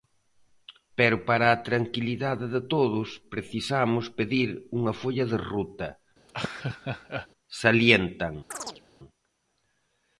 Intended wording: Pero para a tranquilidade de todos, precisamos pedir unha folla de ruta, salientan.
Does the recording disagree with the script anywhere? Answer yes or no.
no